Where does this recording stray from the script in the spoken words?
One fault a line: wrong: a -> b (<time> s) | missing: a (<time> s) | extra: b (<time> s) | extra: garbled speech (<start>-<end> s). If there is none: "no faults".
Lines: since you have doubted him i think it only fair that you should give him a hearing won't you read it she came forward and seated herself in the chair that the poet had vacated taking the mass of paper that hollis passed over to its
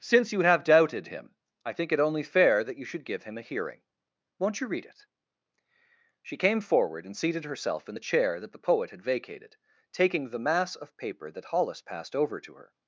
wrong: its -> her (12.5 s)